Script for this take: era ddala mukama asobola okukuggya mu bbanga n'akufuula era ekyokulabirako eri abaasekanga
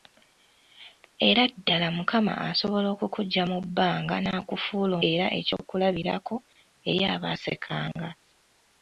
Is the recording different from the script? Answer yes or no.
no